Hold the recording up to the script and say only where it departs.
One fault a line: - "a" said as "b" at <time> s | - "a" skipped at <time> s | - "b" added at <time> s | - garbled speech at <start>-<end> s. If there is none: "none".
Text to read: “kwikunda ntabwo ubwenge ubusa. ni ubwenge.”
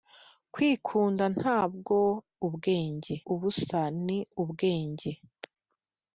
none